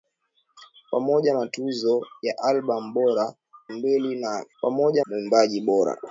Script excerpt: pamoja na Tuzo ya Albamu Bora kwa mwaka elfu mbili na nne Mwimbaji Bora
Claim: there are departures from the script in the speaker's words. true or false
true